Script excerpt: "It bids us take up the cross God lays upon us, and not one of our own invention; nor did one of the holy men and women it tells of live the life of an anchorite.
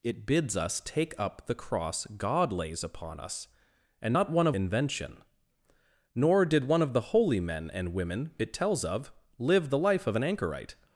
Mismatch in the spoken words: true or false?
true